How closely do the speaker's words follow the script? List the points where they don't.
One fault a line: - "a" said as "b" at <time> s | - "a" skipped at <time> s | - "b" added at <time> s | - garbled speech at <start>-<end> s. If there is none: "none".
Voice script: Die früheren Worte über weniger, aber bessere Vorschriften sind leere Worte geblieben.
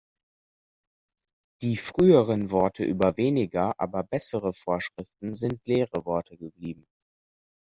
none